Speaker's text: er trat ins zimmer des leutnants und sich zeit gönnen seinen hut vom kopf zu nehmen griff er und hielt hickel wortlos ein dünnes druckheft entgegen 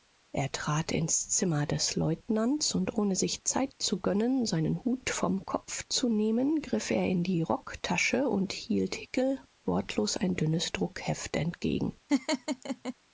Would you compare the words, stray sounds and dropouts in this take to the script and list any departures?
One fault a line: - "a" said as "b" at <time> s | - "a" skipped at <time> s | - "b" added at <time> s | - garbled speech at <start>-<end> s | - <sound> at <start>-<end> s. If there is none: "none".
- "ohne" added at 3.0 s
- "zu" added at 3.8 s
- "in die rocktasche" added at 7.1 s
- laugh at 12.1-12.9 s